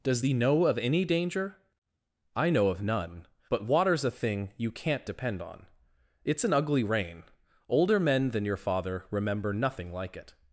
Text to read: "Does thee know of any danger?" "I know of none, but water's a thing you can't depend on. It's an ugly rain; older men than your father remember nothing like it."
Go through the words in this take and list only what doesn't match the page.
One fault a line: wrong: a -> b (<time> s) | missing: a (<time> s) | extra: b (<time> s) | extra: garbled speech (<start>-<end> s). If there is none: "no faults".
no faults